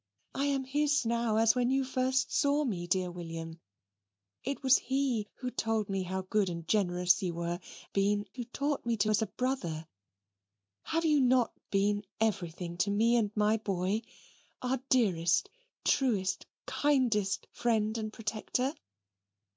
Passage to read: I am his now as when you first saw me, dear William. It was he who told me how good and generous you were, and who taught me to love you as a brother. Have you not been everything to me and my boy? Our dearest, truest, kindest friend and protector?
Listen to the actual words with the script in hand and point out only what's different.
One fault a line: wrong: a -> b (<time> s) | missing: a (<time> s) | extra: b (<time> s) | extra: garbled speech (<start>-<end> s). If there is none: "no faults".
wrong: and -> been (7.9 s)
missing: love you (9.1 s)